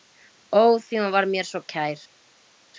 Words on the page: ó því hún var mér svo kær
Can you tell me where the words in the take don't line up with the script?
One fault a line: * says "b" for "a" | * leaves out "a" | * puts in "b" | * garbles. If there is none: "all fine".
all fine